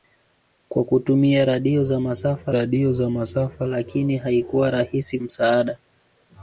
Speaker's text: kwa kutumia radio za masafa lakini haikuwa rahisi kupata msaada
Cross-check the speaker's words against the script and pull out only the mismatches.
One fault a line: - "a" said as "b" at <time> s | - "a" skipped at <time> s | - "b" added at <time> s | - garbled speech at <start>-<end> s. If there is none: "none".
- "radio za masafa" added at 2.5 s
- "kupata" skipped at 5.2 s